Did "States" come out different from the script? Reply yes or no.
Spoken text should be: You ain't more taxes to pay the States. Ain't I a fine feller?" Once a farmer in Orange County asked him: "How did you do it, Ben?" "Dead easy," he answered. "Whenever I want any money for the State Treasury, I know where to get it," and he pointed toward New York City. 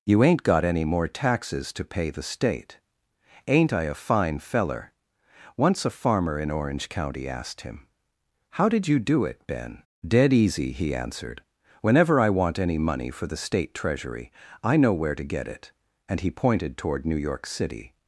yes